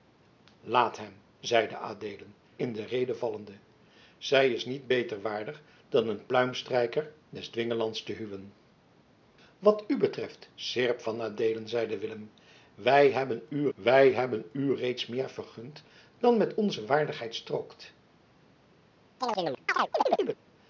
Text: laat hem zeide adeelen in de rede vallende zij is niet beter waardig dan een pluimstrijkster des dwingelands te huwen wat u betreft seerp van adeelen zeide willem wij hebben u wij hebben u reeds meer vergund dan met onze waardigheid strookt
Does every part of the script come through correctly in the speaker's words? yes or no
yes